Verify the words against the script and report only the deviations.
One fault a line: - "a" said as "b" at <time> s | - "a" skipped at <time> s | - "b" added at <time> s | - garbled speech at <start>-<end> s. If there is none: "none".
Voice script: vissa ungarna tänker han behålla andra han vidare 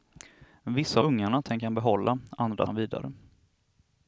none